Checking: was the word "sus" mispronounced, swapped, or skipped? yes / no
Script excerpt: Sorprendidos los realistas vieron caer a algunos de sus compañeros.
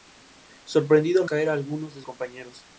yes